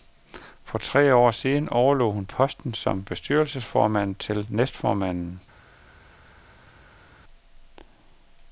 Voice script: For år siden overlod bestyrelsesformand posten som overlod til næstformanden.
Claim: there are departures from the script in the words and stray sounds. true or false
true